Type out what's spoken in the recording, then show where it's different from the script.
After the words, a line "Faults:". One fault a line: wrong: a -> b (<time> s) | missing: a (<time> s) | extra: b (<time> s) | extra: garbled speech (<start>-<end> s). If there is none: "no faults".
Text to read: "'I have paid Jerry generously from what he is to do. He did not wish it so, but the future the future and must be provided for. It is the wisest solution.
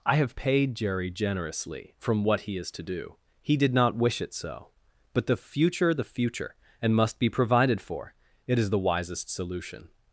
"'I have paid Jerry generously from what he is to do. He did not wish it so, but the future the future and must be provided for. It is the wisest solution.
Faults:
no faults